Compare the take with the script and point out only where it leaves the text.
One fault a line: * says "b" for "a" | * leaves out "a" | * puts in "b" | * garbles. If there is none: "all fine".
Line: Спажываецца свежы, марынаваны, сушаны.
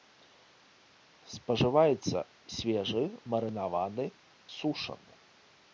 all fine